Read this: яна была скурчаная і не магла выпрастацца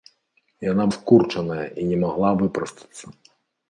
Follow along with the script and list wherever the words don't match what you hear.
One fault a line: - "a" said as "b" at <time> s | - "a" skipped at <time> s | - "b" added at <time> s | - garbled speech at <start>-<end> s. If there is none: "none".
- "была" skipped at 0.8 s